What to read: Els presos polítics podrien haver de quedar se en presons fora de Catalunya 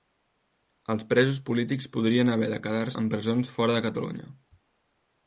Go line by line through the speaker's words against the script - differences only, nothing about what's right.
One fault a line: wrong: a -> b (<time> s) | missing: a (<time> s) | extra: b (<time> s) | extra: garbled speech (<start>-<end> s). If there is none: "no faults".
missing: se (2.9 s)